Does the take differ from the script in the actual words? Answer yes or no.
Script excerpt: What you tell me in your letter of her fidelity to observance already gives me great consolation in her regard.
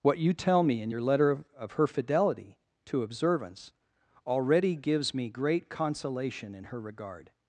yes